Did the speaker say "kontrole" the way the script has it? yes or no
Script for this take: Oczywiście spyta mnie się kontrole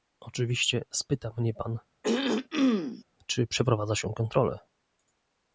yes